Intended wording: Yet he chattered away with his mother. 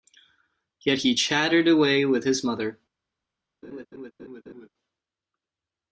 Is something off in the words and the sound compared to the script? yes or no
yes